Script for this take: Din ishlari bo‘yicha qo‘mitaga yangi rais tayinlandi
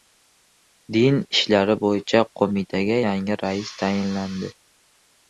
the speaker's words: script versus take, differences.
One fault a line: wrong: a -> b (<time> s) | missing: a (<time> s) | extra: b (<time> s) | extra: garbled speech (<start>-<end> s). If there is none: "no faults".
no faults